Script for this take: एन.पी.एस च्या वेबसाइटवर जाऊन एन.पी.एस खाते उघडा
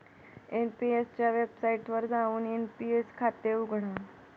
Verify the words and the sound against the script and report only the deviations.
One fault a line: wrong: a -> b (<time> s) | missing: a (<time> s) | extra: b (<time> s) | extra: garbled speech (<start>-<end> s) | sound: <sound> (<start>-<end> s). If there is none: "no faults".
no faults